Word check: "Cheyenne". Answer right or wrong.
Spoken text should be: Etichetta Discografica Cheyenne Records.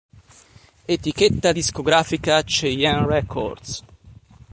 right